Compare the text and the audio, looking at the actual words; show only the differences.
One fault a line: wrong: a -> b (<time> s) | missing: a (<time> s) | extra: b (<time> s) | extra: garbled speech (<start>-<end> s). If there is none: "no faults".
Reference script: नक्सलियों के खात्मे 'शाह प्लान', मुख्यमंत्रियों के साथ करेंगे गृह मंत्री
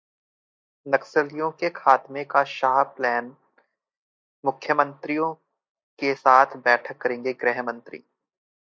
extra: का (2.2 s)
extra: बैठक (6.6 s)